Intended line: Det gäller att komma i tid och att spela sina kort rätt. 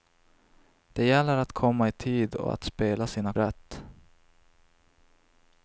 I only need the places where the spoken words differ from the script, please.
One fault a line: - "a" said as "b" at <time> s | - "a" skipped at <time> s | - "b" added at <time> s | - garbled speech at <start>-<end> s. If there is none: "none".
- "kort" skipped at 3.3 s